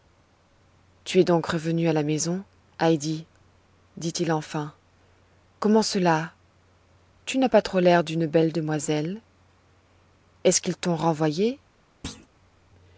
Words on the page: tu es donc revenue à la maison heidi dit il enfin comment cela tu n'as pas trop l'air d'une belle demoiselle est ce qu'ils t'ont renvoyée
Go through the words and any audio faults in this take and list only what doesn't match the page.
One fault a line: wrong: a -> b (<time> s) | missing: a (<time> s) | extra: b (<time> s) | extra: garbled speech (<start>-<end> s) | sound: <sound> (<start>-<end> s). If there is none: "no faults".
sound: thud (12.0-12.3 s)